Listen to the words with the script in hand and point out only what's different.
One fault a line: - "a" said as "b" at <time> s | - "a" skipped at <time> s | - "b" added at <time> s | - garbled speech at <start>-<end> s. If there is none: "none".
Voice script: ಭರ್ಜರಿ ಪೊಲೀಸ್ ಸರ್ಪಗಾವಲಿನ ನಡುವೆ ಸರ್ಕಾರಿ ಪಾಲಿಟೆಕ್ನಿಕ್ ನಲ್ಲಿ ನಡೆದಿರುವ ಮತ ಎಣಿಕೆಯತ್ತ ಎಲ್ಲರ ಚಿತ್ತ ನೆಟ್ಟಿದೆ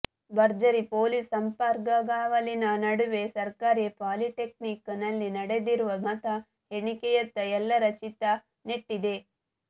none